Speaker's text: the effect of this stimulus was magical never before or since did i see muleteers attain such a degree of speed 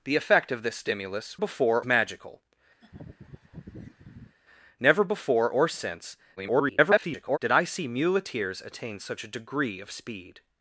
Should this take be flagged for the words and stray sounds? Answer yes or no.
yes